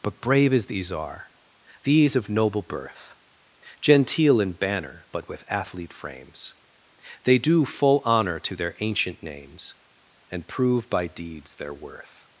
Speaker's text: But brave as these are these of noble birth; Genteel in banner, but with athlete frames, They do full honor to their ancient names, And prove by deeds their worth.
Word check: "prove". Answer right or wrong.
right